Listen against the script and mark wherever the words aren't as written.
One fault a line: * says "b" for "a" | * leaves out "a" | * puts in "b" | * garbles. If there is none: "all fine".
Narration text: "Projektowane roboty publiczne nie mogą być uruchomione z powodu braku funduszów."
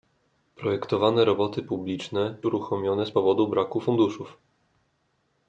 * leaves out "nie mogą być"